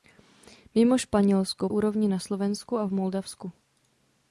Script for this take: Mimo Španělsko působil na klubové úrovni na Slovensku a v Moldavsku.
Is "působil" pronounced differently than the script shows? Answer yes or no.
yes